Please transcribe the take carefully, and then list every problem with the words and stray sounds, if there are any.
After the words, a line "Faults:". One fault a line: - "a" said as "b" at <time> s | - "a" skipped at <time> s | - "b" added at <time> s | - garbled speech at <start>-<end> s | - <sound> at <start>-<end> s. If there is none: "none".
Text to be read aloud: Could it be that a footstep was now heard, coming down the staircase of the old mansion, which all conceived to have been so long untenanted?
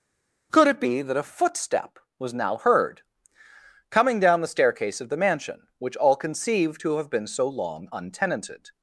Could it be that a footstep was now heard, coming down the staircase of the mansion, which all conceived to have been so long untenanted?
Faults:
- "old" skipped at 5.2 s